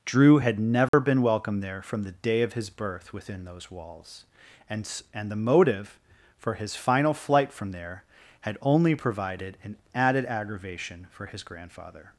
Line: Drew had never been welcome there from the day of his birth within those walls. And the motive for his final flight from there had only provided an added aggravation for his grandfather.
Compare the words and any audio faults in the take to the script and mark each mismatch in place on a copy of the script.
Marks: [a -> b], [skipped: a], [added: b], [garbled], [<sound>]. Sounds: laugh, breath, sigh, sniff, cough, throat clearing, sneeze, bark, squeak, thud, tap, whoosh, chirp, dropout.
Drew had never [dropout] been welcome there from the day of his birth within those walls. And [added: And] the motive for his final flight from there had only provided an added aggravation for his grandfather.